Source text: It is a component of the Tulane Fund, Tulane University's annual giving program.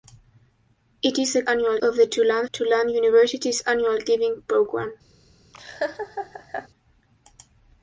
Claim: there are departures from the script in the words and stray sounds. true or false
true